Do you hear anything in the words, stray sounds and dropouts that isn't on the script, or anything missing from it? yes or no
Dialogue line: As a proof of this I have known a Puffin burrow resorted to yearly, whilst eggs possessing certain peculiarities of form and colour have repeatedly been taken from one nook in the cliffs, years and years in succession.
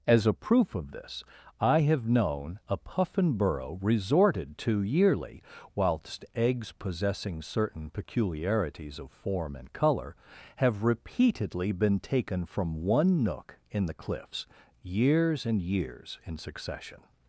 no